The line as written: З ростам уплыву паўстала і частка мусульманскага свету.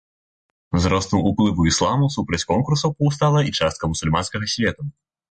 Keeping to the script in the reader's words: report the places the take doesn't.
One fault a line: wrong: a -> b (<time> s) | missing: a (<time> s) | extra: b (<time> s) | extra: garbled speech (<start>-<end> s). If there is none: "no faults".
extra: ісламу супраць конкурсаў (1.7 s)